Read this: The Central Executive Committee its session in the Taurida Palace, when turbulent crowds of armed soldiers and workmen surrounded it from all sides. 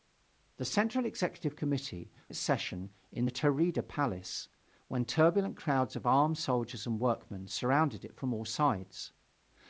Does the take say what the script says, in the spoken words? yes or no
yes